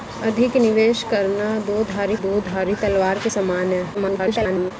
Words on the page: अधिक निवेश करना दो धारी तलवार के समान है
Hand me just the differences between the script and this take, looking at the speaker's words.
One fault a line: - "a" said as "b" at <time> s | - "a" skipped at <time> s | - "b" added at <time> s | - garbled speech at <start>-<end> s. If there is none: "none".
- "दो धारी" added at 2.2 s
- garbled speech at 3.9-4.7 s